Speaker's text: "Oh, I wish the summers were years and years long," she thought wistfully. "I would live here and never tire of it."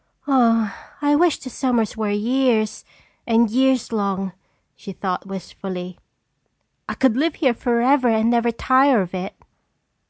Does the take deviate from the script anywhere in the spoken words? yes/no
yes